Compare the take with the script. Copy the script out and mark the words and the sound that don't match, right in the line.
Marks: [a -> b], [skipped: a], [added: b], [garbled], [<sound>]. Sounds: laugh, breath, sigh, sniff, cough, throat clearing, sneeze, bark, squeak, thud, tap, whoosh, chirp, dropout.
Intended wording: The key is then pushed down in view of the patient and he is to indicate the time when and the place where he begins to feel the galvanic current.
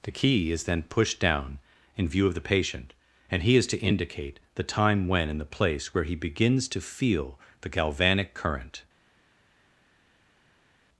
The key is then pushed down in view of the patient and he is to indicate the time when and the place where he begins to feel the galvanic current.